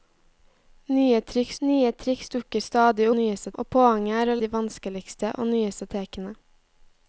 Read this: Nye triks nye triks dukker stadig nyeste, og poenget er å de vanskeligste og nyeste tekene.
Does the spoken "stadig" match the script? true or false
true